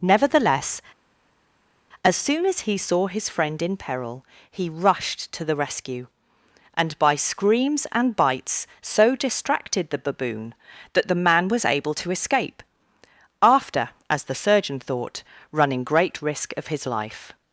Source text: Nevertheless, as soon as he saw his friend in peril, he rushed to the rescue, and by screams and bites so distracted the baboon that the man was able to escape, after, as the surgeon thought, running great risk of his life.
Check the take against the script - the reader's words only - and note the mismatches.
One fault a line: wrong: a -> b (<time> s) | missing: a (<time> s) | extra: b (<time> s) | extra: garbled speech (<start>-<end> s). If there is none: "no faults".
no faults